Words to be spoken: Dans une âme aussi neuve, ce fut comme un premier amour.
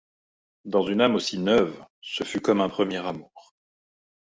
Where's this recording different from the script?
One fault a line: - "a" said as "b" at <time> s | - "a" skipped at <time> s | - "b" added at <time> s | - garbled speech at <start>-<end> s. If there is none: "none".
none